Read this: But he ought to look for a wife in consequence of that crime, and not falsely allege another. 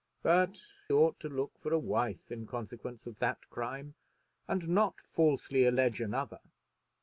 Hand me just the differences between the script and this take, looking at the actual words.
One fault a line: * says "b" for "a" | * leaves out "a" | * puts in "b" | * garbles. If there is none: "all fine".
* leaves out "he"